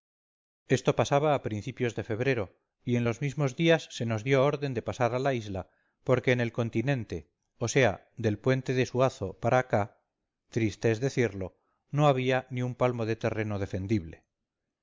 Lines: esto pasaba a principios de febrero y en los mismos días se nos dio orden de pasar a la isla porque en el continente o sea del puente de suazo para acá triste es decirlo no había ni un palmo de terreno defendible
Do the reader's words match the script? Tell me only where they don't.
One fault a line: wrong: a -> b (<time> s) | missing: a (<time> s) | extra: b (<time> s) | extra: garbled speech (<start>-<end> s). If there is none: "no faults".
no faults